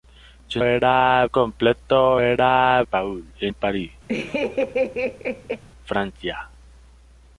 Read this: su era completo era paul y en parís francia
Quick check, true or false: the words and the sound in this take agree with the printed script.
false